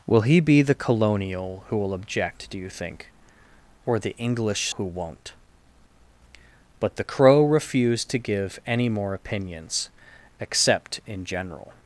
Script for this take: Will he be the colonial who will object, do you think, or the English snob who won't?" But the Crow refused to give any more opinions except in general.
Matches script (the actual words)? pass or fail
fail